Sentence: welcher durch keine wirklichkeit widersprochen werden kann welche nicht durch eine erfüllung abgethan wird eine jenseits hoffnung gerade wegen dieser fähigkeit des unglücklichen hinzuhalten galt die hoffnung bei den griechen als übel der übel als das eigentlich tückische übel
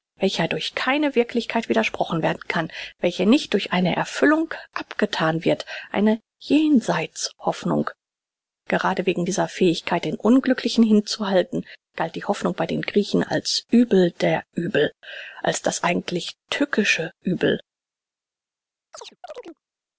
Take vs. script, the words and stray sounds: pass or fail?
fail